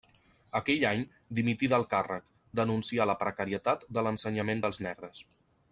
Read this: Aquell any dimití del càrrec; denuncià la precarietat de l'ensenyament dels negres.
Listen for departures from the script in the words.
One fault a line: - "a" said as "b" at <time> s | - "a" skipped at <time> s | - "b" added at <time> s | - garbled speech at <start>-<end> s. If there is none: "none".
none